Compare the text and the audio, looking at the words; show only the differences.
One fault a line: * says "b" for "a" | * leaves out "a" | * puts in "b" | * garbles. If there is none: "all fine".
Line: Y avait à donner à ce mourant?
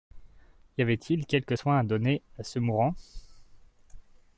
* puts in "il quelque soin"